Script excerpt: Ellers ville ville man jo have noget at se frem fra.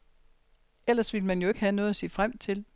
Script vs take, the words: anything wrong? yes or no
yes